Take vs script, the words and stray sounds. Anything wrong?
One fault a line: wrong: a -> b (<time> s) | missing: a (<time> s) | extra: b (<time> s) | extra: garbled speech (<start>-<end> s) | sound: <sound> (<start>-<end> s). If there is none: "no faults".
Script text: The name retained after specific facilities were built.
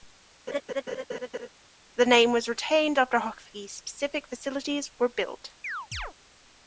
sound: laugh (0.5-1.5 s)
extra: was (2.3 s)
extra: hockey (3.2 s)
sound: chirp (5.6-6.1 s)